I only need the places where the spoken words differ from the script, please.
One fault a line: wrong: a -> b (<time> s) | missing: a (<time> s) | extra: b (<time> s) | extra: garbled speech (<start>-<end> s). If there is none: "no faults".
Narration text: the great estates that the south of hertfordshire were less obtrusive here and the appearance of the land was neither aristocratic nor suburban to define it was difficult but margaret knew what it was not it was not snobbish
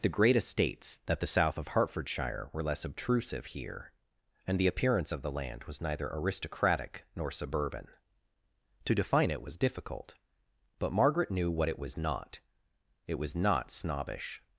no faults